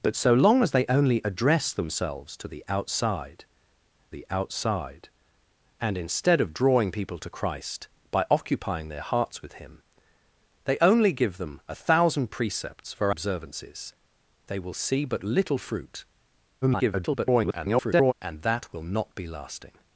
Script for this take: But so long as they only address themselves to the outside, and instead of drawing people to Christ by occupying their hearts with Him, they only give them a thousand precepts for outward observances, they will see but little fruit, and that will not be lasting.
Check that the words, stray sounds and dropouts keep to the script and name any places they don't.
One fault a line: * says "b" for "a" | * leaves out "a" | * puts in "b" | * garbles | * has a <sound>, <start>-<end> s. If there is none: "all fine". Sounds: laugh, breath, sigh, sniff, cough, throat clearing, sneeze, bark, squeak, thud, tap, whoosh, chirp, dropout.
* puts in "the outside"
* leaves out "outward"
* garbles